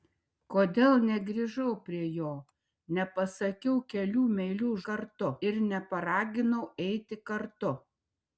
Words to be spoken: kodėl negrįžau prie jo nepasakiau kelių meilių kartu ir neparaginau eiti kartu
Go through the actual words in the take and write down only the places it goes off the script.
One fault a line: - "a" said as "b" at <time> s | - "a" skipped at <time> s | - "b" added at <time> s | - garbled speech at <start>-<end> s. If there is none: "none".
none